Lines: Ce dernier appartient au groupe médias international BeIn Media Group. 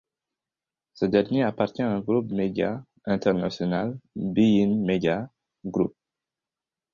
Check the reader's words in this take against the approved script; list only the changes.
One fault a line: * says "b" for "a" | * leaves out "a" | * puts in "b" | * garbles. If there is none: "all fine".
all fine